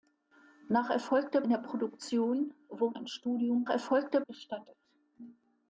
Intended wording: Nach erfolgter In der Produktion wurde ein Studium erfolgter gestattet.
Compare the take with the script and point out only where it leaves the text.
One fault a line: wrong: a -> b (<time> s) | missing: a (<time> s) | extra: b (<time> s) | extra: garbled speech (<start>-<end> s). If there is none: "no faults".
no faults